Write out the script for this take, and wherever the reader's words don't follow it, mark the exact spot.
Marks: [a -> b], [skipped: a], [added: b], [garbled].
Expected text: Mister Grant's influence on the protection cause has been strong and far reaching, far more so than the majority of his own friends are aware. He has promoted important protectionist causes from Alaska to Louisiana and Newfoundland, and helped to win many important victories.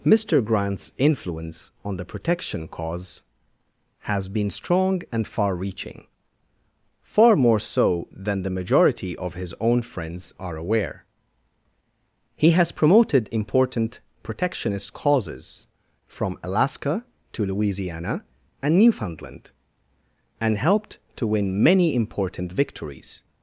Mister Grant's influence on the protection cause has been strong and far reaching, far more so than the majority of his own friends are aware. He has promoted important protectionist causes from Alaska to Louisiana and Newfoundland, and helped to win many important victories.